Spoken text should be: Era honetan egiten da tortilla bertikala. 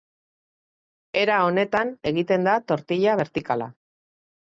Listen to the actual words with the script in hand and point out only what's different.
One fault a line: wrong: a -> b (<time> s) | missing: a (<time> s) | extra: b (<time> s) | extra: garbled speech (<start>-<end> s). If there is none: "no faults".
no faults